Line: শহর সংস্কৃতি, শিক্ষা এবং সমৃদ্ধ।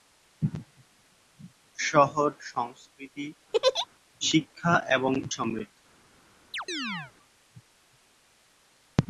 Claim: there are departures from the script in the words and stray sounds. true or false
true